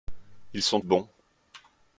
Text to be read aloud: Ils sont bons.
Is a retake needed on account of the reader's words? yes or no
no